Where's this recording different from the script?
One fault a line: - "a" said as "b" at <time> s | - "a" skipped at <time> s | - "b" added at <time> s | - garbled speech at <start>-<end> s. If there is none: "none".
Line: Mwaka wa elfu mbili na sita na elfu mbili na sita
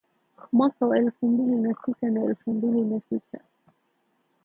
none